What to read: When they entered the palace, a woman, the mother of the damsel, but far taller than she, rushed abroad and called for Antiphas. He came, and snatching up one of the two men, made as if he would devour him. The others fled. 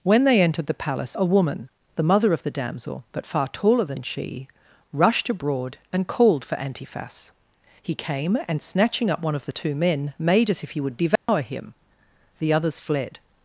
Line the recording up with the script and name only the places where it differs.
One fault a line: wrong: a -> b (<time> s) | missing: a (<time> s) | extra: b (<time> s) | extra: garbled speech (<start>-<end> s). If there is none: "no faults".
no faults